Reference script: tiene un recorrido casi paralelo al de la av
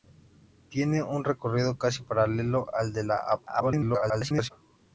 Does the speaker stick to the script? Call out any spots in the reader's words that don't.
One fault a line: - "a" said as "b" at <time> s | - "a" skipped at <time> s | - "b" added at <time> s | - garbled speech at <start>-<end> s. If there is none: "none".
- garbled speech at 3.5-4.5 s